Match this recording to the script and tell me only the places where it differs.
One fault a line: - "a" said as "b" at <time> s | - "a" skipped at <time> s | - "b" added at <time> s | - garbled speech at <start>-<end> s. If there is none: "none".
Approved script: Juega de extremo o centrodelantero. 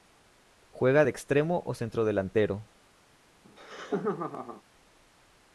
none